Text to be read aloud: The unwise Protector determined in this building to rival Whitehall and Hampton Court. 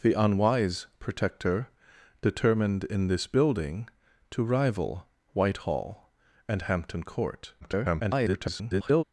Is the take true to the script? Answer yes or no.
no